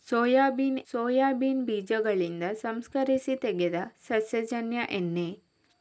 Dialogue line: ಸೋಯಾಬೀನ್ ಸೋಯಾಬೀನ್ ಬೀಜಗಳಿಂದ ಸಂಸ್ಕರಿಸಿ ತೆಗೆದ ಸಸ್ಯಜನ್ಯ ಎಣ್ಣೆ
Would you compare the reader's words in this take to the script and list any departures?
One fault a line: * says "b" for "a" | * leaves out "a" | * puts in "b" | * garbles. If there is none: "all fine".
all fine